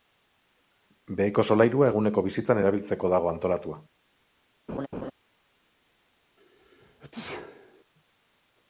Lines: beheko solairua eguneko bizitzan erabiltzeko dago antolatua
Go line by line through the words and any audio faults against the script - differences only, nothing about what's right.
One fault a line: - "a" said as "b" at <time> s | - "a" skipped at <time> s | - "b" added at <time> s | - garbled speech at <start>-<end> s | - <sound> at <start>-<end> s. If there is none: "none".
- laugh at 4.7-5.1 s
- sneeze at 6.4-7.8 s